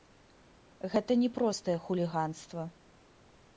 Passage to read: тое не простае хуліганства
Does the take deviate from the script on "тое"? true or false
true